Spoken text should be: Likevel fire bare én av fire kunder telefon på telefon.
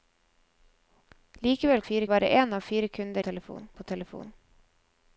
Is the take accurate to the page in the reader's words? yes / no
yes